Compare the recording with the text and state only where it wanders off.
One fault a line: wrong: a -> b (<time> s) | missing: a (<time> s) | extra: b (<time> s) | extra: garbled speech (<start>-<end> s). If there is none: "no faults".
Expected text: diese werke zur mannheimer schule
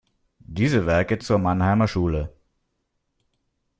no faults